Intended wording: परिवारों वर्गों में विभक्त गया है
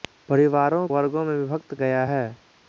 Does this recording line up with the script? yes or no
yes